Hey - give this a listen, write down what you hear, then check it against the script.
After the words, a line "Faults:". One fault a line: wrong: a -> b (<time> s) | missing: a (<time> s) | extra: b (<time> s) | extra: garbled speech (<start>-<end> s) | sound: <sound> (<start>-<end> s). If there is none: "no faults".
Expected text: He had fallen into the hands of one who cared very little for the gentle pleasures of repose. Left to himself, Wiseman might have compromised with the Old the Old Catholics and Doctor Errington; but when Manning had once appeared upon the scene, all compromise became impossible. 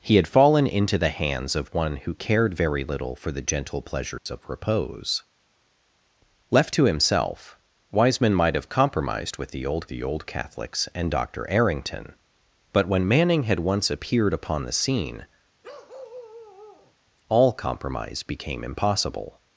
He had fallen into the hands of one who cared very little for the gentle pleasures of repose. Left to himself, Wiseman might have compromised with the Old the Old Catholics and Doctor Errington; but when Manning had once appeared upon the scene, all compromise became impossible.
Faults:
sound: dropout (4.2-4.3 s)
sound: bark (15.6-16.9 s)